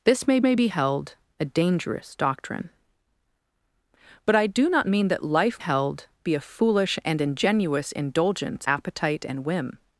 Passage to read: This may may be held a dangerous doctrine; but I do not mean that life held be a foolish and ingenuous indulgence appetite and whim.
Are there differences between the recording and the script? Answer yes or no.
no